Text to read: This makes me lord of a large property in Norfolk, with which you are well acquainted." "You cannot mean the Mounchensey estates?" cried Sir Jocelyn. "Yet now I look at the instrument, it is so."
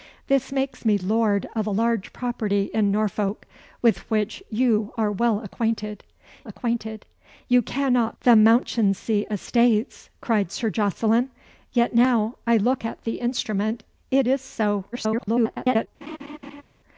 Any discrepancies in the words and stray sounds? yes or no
yes